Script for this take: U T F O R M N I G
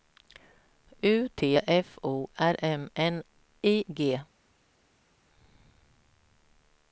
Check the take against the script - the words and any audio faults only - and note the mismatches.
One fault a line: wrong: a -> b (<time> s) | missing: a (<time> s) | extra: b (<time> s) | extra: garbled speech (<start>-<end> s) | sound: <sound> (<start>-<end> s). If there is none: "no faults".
no faults